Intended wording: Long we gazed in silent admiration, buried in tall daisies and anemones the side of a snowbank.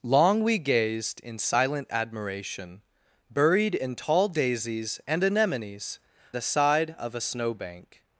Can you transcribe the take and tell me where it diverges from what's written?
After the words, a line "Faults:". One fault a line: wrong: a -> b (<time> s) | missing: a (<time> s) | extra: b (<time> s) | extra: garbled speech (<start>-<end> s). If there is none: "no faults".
Long we gazed in silent admiration, buried in tall daisies and anemones the side of a snowbank.
Faults:
no faults